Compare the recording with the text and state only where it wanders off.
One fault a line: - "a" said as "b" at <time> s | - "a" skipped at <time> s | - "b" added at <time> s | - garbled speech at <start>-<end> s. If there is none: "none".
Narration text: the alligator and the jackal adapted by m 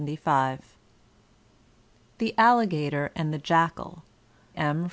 - "adapted by" skipped at 4.0 s